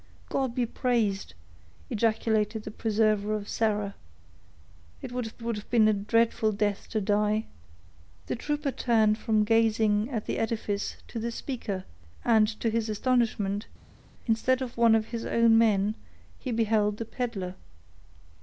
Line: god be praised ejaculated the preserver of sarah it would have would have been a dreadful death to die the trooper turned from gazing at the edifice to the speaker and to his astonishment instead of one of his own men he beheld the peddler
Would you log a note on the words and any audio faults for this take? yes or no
no